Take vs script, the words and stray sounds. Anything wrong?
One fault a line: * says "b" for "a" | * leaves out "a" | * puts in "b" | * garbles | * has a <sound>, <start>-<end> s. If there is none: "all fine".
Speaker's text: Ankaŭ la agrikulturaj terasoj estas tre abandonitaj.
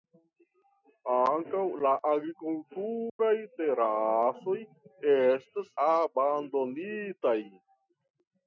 * has a dropout, 3.1-3.2 s
* leaves out "tre"